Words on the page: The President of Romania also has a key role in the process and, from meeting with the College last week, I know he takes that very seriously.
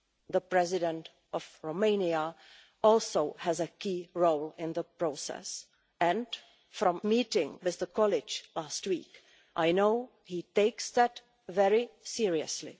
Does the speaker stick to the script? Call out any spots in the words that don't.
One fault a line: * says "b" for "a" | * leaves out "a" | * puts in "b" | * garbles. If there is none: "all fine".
all fine